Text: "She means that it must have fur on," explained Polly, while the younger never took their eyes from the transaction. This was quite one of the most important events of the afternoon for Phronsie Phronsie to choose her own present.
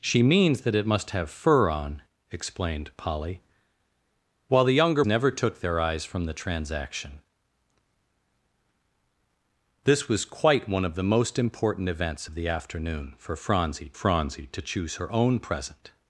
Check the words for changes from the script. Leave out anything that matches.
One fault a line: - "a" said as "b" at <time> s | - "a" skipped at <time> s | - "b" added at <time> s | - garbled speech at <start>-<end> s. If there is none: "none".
none